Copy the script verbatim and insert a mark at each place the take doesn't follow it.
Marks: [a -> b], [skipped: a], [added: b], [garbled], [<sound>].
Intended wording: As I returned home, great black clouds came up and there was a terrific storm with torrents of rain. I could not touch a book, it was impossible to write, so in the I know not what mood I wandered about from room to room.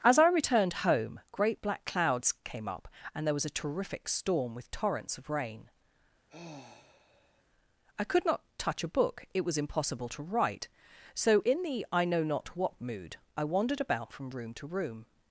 As I returned home, great black clouds came up and there was a terrific storm with torrents of rain. [sigh] I could not touch a book, it was impossible to write, so in the I know not what mood I wandered about from room to room.